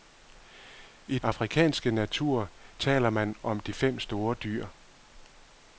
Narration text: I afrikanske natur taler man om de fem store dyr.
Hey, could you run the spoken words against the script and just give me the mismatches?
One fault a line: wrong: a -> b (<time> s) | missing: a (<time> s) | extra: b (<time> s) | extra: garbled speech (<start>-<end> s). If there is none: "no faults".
no faults